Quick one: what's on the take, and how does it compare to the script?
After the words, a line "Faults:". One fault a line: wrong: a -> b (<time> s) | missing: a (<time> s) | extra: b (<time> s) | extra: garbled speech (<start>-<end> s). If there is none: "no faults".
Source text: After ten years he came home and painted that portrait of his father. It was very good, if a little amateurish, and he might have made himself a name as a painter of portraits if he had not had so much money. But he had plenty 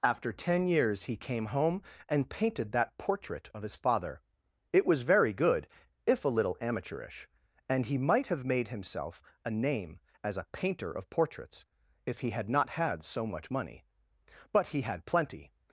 After ten years he came home and painted that portrait of his father. It was very good, if a little amateurish, and he might have made himself a name as a painter of portraits if he had not had so much money. But he had plenty
Faults:
no faults